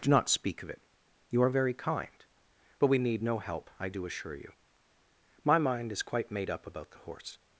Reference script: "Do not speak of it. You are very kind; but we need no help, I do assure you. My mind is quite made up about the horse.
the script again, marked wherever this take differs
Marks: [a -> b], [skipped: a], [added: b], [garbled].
"Do not speak of it. You are very kind; but we need no help, I do assure you. My mind is quite made up about the horse.